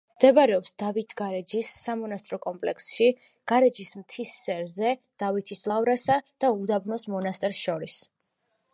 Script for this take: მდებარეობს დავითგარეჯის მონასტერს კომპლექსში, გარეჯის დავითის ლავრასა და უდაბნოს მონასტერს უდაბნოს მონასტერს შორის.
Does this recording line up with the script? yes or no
no